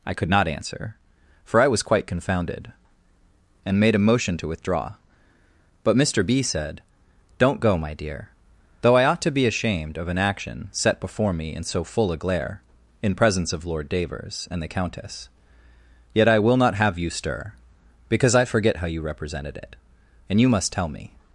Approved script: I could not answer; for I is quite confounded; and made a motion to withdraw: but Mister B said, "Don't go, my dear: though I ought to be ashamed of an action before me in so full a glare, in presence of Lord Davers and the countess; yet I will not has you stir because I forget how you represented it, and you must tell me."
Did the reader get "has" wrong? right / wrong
wrong